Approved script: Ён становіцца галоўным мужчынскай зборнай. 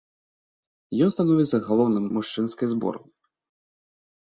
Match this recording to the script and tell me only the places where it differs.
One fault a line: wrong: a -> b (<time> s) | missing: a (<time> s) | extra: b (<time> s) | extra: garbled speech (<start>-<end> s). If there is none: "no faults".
no faults